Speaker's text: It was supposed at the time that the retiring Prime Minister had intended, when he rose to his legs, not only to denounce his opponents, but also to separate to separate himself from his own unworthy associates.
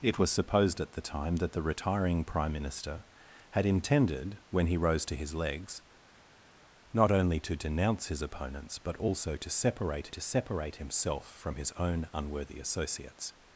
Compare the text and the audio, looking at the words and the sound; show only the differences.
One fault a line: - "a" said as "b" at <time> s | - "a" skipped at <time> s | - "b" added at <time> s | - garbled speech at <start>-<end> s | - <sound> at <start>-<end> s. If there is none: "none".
none